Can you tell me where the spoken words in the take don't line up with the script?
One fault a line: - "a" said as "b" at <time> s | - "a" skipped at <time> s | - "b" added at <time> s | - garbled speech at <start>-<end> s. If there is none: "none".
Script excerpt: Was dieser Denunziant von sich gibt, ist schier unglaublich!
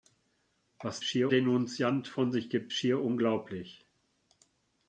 - "dieser" said as "schier" at 1.0 s
- "ist" skipped at 2.7 s